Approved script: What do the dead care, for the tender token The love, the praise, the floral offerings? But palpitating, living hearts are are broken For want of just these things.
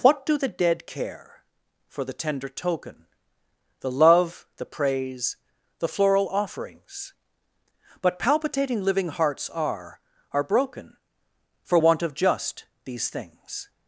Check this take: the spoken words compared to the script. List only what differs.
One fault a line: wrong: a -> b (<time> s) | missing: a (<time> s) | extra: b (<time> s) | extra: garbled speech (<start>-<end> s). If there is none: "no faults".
no faults